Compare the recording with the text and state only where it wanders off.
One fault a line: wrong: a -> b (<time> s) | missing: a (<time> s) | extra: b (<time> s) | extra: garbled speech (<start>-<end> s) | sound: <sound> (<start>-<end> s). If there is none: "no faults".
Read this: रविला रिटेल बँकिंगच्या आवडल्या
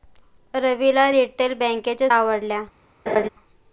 sound: laugh (3.1-3.3 s)